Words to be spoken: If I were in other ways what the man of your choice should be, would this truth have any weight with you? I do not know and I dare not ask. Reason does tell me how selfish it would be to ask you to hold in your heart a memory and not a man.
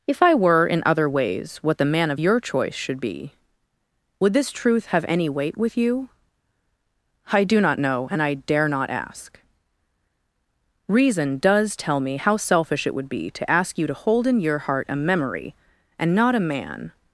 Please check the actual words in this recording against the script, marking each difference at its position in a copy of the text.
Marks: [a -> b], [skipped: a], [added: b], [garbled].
If I were in other ways what the man of your choice should be, would this truth have any weight with you? I do not know and I dare not ask. Reason does tell me how selfish it would be to ask you to hold in your heart a memory and not a man.